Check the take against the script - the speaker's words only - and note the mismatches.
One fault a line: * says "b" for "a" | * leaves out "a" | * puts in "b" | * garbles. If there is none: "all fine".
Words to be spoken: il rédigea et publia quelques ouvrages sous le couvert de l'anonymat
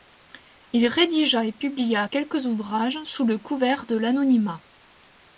all fine